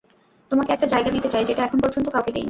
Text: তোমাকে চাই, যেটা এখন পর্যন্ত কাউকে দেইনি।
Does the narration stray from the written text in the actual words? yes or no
yes